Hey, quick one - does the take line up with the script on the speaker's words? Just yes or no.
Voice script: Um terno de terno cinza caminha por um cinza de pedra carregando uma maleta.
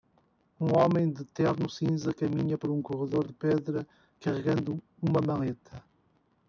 no